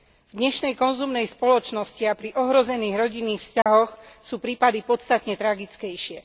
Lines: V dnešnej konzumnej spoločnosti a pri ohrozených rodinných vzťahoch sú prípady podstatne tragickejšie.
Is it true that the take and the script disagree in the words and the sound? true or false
true